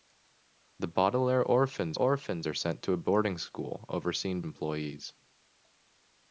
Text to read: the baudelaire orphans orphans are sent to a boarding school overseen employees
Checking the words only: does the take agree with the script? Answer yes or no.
yes